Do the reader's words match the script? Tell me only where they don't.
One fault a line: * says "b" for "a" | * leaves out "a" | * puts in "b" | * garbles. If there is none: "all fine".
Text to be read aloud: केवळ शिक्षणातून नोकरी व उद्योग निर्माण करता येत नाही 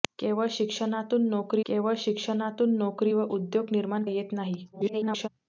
* puts in "केवळ शिक्षणातून नोकरी"
* leaves out "करता"
* garbles